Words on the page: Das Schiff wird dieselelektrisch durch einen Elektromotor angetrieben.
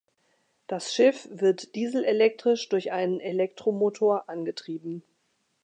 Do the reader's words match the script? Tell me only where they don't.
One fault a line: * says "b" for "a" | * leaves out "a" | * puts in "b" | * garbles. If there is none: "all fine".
all fine